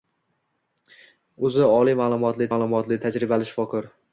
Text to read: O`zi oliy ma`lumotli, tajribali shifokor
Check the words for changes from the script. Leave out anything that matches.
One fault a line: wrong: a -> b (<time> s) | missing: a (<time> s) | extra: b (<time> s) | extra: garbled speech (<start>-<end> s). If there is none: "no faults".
extra: ma`lumotli (2.5 s)